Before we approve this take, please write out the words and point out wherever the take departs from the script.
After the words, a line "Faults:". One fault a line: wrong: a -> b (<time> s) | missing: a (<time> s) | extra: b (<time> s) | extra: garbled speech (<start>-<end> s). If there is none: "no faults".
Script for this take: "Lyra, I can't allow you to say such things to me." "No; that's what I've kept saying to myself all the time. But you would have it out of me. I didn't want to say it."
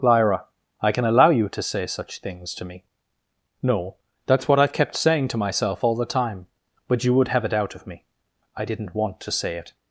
"Lyra, I can allow you to say such things to me." "No; that's what I've kept saying to myself all the time. But you would have it out of me. I didn't want to say it."
Faults:
wrong: can't -> can (0.9 s)